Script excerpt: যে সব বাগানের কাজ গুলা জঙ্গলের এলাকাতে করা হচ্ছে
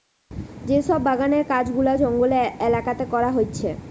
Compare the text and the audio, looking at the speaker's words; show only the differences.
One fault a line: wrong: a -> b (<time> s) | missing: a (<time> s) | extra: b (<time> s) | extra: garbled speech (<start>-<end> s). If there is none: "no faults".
no faults